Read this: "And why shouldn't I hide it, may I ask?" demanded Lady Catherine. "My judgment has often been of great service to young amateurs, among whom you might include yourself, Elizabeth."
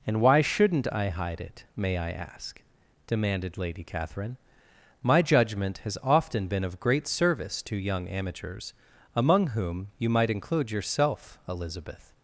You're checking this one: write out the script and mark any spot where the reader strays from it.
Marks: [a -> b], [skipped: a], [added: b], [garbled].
"And why shouldn't I hide it, may I ask?" demanded Lady Catherine. "My judgment has often been of great service to young amateurs, among whom you might include yourself, Elizabeth."